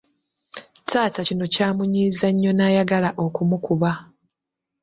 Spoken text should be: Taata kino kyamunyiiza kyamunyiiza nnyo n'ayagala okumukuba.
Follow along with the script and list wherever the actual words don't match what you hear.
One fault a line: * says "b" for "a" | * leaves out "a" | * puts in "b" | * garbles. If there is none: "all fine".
* leaves out "kyamunyiiza"